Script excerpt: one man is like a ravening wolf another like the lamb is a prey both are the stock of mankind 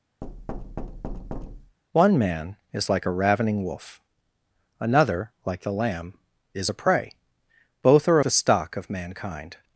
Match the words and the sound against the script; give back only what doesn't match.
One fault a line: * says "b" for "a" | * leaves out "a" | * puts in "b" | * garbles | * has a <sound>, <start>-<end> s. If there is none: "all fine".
* has a thud, 0.2-1.8 s